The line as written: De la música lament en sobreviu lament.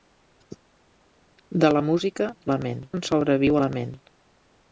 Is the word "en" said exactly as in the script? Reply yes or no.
yes